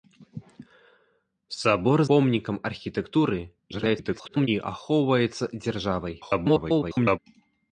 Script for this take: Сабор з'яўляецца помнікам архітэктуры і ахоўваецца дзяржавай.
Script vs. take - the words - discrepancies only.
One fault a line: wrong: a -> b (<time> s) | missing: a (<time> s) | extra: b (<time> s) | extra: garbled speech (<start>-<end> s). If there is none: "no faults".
missing: з'яўляецца (2.0 s)
extra: garbled speech (3.7-4.5 s)
extra: garbled speech (6.2-7.2 s)